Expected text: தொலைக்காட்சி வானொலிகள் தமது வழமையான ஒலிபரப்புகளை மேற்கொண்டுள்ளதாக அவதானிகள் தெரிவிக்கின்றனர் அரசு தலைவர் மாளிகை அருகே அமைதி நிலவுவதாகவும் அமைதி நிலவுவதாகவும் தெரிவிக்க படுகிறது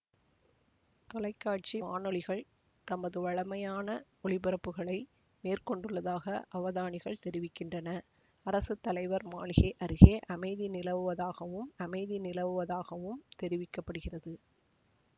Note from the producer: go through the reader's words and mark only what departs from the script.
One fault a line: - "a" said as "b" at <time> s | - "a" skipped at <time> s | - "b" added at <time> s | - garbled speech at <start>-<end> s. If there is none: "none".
none